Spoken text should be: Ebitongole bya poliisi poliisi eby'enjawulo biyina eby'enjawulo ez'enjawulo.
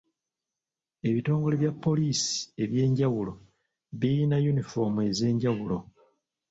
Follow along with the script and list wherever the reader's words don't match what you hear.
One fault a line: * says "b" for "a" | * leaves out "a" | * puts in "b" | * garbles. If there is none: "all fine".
* leaves out "poliisi"
* says "yunifoomu" for "eby'enjawulo"